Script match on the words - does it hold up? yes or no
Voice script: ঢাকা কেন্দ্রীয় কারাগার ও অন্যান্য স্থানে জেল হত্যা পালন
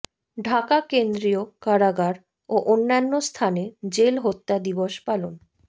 no